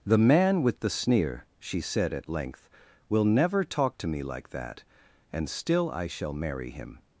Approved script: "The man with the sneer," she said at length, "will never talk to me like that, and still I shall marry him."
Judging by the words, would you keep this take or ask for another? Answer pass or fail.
pass